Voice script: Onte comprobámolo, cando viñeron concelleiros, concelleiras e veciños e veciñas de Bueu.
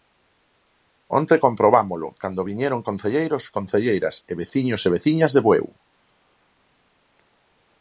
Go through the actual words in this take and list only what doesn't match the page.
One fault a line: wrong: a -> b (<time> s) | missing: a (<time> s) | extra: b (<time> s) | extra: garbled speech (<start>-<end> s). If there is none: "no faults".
no faults